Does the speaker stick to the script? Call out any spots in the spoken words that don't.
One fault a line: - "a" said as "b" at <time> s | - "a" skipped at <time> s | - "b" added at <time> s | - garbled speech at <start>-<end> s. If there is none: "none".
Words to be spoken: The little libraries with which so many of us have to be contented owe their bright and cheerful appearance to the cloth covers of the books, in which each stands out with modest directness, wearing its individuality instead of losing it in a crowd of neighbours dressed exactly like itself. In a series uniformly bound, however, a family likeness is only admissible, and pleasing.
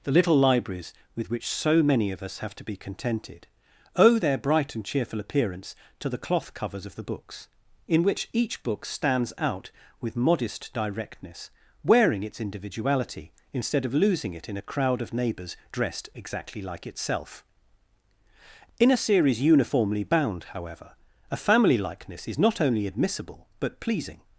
- "book" added at 8.6 s
- "not" added at 22.4 s
- "and" said as "but" at 23.6 s